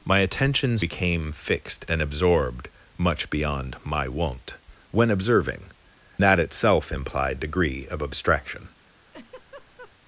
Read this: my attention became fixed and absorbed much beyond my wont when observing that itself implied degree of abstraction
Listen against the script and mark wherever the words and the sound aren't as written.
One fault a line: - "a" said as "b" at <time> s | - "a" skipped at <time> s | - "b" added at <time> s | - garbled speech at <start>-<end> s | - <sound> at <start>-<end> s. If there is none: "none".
- laugh at 9.1-9.9 s